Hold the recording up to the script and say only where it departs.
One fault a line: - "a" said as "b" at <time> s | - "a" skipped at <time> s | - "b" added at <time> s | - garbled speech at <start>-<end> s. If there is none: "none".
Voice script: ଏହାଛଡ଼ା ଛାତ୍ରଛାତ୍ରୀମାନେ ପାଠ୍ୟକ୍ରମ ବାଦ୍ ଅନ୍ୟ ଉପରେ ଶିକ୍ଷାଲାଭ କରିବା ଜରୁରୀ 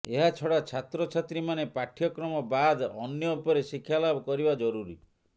none